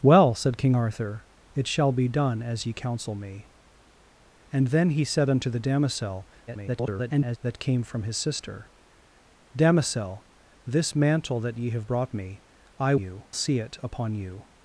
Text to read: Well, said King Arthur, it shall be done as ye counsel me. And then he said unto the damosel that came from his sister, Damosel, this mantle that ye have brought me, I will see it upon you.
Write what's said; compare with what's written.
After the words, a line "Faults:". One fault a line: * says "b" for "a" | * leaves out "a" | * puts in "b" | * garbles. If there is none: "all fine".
Well, said King Arthur, it shall be done as ye counsel me. And then he said unto the damosel [garbled] that came from his sister, Damosel, this mantle that ye have brought me, I you see it upon you.
Faults:
* garbles
* says "you" for "will"